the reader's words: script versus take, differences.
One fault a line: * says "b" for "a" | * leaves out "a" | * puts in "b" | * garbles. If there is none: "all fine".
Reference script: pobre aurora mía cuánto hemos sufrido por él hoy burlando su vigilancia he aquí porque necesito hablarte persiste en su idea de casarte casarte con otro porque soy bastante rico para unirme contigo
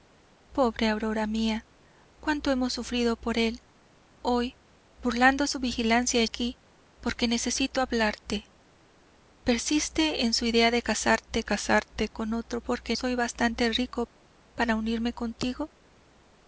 all fine